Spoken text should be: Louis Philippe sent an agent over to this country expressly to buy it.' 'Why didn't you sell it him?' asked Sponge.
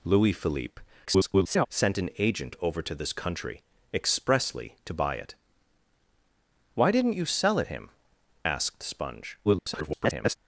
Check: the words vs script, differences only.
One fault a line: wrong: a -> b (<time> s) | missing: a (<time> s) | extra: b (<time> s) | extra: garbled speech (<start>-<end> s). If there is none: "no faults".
extra: garbled speech (1.1-1.7 s)
extra: garbled speech (9.4-10.4 s)